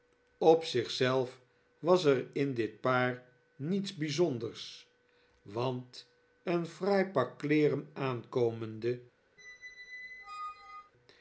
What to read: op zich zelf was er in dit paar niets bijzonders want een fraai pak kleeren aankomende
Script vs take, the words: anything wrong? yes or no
no